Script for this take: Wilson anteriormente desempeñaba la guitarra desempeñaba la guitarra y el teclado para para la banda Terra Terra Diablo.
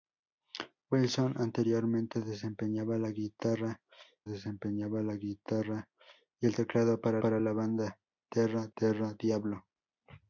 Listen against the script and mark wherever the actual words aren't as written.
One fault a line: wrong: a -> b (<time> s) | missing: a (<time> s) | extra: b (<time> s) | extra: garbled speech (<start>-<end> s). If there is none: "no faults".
no faults